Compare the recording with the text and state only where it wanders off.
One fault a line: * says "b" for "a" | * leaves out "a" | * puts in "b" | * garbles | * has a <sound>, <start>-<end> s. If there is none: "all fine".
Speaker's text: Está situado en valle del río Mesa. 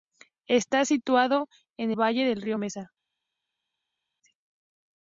all fine